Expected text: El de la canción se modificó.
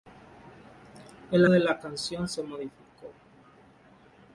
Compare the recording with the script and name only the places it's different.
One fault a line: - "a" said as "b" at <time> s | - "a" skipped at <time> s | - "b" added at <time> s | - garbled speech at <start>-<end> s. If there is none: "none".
none